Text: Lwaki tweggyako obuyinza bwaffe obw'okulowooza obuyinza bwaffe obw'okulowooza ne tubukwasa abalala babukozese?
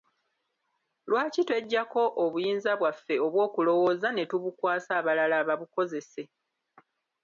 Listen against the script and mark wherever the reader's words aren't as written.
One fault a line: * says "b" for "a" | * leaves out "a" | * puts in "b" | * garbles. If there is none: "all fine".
* leaves out "obuyinza bwaffe obw'okulowooza"